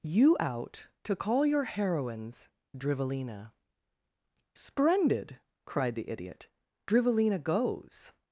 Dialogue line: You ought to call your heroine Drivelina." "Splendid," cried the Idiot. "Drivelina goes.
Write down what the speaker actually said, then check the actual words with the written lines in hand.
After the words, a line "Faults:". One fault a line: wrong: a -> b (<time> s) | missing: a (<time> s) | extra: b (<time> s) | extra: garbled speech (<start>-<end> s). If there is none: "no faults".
You out to call your heroines Drivelina." "Splendid," cried the Idiot. "Drivelina goes.
Faults:
wrong: ought -> out (0.4 s)
wrong: heroine -> heroines (1.6 s)